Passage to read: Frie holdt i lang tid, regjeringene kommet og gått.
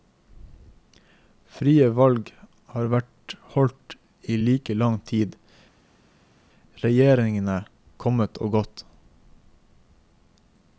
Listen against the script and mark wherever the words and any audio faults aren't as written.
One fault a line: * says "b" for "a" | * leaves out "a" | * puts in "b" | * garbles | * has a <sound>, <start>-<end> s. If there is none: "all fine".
* puts in "valg har vært"
* puts in "like"